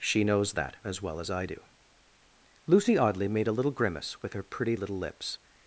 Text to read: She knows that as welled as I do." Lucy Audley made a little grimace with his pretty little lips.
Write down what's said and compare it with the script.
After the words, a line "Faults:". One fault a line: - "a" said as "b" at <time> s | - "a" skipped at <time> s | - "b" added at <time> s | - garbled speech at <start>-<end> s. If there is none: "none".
She knows that as well as I do." Lucy Audley made a little grimace with her pretty little lips.
Faults:
- "welled" said as "well" at 1.0 s
- "his" said as "her" at 4.3 s